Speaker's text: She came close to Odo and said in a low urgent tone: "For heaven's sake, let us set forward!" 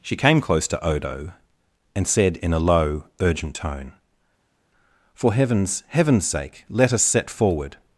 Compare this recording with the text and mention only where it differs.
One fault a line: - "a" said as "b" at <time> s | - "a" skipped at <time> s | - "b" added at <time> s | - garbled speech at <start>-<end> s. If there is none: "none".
- "heaven's" added at 5.9 s